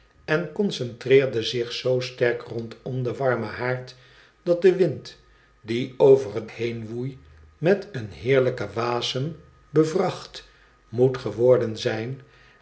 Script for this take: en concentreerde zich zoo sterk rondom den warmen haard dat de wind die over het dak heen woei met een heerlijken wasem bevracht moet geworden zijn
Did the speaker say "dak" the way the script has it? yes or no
no